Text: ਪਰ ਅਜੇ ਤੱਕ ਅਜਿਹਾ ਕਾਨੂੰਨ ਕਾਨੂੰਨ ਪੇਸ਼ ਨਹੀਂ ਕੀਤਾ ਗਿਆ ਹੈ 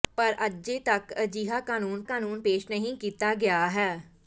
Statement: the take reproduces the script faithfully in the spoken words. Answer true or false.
true